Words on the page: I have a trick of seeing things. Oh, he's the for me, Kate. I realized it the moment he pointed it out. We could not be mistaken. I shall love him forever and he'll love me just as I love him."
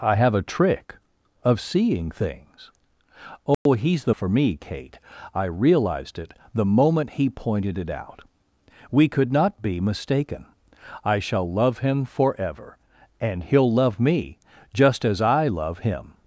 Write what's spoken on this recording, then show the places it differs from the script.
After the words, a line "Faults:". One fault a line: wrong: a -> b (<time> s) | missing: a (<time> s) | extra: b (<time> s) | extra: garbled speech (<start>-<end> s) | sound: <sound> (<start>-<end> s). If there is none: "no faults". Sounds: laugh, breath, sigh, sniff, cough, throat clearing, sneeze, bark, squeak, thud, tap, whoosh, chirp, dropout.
I have a trick of seeing things. Oh, he's the for me, Kate. I realized it the moment he pointed it out. We could not be mistaken. I shall love him forever and he'll love me just as I love him."
Faults:
sound: dropout (3.5-3.7 s)